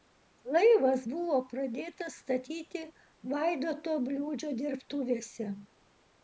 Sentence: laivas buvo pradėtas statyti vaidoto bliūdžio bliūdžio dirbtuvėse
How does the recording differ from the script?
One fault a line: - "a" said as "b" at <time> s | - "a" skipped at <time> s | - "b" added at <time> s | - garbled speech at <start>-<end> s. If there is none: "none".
- "bliūdžio" skipped at 4.5 s